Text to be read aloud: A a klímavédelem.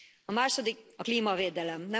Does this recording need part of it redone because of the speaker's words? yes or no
yes